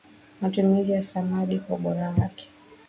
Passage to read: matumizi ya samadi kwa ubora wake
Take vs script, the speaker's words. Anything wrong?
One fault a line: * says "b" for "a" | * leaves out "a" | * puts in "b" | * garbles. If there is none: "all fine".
all fine